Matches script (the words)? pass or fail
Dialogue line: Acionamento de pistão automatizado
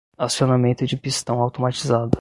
pass